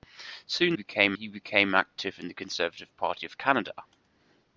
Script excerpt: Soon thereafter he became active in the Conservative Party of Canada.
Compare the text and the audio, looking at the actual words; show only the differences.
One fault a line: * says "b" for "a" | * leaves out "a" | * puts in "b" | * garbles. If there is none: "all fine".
* says "became" for "thereafter"